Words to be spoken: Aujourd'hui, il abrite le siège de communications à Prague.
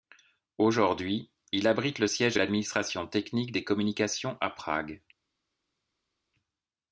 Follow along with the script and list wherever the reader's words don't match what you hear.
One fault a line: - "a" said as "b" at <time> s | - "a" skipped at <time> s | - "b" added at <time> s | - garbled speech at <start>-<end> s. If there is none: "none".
- "l'administration technique des" added at 2.3 s